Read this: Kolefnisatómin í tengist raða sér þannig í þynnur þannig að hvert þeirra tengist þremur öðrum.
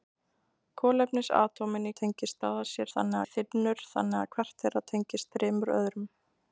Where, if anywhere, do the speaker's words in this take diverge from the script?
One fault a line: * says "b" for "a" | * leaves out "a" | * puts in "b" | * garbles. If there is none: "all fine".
all fine